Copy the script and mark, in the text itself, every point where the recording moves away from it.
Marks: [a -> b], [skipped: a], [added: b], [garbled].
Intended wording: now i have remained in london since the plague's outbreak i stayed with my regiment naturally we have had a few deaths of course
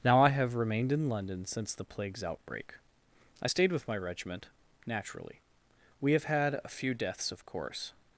now i have remained in london since the plague's outbreak i stayed with my regiment naturally we have had a few deaths of course